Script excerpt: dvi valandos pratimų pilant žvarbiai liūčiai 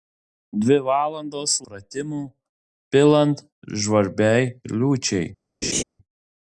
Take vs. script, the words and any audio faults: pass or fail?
fail